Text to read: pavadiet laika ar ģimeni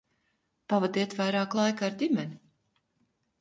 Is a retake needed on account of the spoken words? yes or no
yes